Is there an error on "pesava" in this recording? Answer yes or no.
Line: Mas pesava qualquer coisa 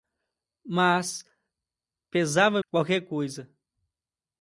no